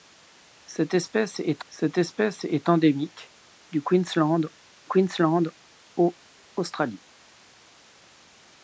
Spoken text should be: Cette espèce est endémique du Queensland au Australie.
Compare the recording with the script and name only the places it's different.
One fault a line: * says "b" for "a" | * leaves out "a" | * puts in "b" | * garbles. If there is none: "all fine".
* puts in "cette espèce est"
* puts in "Queensland"